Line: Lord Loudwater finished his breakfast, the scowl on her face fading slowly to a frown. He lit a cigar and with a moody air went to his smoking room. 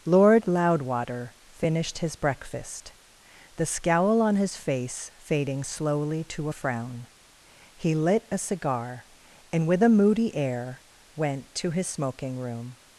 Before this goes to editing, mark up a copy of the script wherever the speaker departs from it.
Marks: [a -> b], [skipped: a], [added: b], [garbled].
Lord Loudwater finished his breakfast, the scowl on [her -> his] face fading slowly to a frown. He lit a cigar and with a moody air went to his smoking room.